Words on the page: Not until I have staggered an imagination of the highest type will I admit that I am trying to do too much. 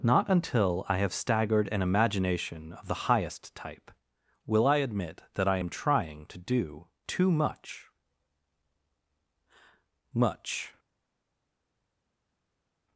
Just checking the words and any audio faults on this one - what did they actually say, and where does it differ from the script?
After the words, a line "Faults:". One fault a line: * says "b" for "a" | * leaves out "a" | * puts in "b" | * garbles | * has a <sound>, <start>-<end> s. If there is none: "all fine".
Not until I have staggered an imagination of the highest type will I admit that I am trying to do too much much.
Faults:
* puts in "much"